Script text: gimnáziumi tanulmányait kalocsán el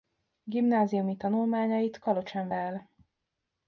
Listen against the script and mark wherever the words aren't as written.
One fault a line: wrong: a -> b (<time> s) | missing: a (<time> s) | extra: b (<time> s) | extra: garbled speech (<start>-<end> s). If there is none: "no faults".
no faults